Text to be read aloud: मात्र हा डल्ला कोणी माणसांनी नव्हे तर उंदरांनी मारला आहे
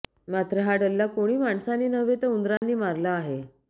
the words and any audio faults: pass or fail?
fail